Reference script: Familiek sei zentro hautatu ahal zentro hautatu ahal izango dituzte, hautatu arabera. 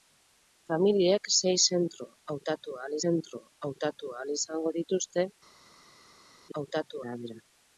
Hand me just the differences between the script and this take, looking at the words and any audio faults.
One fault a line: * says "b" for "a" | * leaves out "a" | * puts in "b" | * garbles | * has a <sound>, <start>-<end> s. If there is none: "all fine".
all fine